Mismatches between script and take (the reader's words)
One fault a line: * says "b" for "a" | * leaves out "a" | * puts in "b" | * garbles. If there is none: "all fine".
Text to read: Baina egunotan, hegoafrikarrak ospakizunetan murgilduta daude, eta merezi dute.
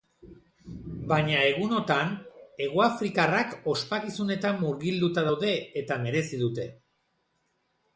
all fine